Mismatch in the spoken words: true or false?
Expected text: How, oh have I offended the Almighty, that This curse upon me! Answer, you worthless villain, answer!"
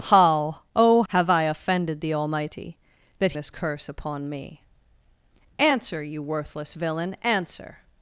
false